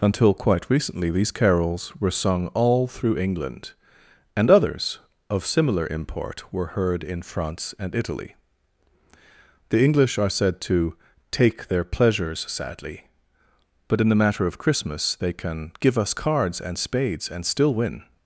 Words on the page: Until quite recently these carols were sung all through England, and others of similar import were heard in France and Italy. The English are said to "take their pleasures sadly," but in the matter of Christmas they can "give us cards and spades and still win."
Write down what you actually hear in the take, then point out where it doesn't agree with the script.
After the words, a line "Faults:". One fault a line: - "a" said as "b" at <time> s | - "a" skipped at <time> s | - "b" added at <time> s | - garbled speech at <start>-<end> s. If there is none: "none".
Until quite recently these carols were sung all through England, and others of similar import were heard in France and Italy. The English are said to "take their pleasures sadly," but in the matter of Christmas they can "give us cards and spades and still win."
Faults:
none